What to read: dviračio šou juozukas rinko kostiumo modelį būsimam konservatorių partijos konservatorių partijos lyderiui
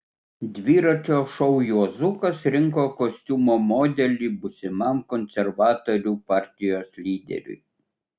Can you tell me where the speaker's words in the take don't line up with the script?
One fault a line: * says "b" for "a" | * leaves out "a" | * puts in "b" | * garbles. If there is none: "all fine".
* leaves out "konservatorių partijos"